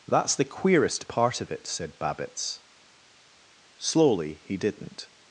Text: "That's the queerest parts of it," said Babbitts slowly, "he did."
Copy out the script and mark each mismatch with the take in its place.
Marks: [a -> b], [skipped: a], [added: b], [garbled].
"That's the queerest [parts -> part] of it," said Babbitts slowly, "he [did." -> didn't]